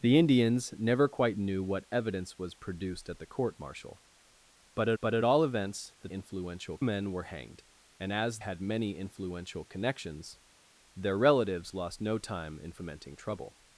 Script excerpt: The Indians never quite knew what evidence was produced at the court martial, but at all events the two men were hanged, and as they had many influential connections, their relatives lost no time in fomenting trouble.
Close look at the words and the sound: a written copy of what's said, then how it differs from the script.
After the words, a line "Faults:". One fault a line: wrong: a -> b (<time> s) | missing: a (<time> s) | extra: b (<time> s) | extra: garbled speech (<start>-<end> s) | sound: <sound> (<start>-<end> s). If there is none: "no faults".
The Indians never quite knew what evidence was produced at the court martial, but at but at all events the influential men were hanged, and as had many influential connections, their relatives lost no time in fomenting trouble.
Faults:
extra: but at (5.0 s)
wrong: two -> influential (6.1 s)
missing: they (8.4 s)